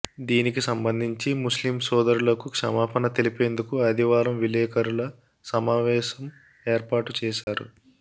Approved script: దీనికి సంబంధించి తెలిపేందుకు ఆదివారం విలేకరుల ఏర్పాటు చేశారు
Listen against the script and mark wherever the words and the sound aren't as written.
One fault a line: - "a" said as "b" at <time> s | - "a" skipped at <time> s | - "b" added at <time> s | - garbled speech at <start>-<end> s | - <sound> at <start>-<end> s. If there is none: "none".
- "ముస్లిం సోదరులకు క్షమాపణ" added at 1.4 s
- "సమావేశం" added at 5.5 s
- dropout at 7.4-7.5 s